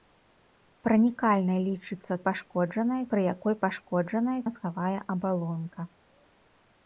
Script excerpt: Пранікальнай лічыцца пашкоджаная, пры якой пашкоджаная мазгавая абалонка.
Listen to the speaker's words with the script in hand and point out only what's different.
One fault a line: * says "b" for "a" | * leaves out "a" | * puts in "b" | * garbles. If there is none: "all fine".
all fine